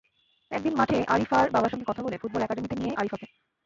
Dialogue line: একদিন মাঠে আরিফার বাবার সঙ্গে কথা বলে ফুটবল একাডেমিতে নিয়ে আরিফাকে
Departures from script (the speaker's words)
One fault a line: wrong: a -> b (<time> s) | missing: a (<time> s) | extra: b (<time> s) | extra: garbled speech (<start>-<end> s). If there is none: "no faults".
no faults